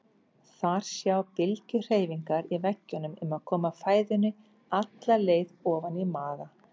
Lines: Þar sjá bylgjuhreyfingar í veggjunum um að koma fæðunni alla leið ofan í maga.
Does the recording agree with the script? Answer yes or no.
yes